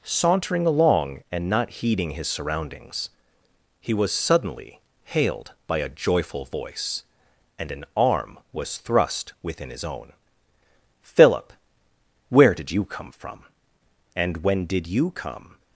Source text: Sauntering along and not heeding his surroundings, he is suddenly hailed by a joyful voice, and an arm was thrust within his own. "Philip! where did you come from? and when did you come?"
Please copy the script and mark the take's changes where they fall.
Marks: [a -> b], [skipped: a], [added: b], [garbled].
Sauntering along and not heeding his surroundings, he [is -> was] suddenly hailed by a joyful voice, and an arm was thrust within his own. "Philip! where did you come from? and when did you come?"